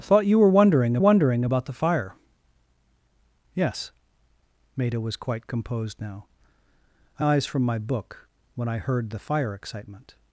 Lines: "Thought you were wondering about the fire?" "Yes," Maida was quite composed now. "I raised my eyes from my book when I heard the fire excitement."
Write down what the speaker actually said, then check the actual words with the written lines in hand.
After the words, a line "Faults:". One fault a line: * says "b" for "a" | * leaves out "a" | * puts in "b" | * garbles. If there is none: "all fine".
"Thought you were wondering wondering about the fire?" "Yes," Maida was quite composed now. "I eyes from my book when I heard the fire excitement."
Faults:
* puts in "wondering"
* leaves out "raised my"